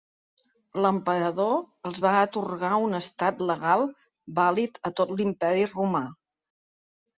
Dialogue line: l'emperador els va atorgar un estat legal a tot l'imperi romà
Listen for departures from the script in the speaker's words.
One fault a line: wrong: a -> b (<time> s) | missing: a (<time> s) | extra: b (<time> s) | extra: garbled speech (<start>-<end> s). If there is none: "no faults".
extra: vàlid (4.4 s)